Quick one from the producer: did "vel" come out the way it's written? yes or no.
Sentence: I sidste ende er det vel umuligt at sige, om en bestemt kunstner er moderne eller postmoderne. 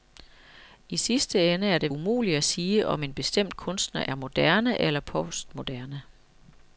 no